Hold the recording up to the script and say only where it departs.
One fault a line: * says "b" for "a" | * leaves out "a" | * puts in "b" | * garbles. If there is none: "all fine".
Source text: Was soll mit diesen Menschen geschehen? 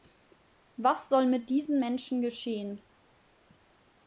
all fine